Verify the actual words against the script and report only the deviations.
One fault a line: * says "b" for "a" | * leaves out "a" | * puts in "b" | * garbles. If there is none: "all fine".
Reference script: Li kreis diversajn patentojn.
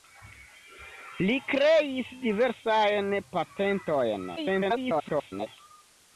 * garbles